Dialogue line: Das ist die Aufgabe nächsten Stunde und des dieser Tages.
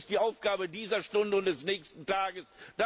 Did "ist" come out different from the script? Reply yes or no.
no